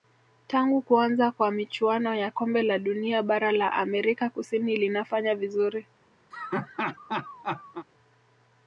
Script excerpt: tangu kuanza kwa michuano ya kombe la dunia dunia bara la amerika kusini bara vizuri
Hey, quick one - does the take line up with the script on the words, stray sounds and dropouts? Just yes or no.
no